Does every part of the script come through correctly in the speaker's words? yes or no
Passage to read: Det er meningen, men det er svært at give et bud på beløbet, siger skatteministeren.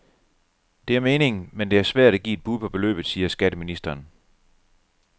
yes